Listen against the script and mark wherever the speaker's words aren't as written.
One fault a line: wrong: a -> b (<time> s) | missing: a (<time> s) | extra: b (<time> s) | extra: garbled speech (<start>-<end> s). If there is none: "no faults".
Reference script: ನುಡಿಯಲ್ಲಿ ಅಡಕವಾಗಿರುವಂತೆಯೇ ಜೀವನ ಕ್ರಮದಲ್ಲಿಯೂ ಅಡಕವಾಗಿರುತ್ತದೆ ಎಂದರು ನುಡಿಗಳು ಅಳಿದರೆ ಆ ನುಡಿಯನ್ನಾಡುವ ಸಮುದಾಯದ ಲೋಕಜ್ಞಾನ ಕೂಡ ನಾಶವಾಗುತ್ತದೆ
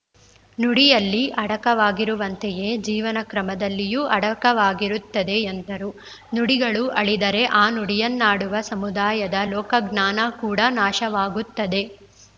no faults